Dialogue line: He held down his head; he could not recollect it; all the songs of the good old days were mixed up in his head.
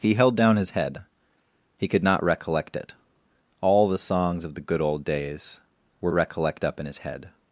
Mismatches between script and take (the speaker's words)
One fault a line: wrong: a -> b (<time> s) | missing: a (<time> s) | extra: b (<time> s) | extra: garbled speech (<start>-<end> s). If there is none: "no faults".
wrong: mixed -> recollect (6.1 s)